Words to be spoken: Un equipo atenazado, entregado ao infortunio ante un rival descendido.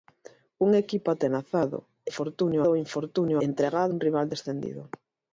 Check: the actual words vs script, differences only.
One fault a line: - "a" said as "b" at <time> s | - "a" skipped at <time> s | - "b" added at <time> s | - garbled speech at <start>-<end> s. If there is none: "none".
- "entregado" said as "infortunio" at 2.1 s
- "ante" said as "entregado" at 3.5 s